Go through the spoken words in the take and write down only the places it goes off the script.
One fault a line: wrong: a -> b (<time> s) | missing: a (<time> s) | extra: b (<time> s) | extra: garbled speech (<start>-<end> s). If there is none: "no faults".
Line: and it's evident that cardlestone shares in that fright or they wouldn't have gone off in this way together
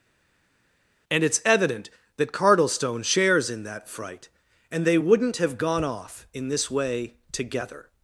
wrong: or -> and (4.7 s)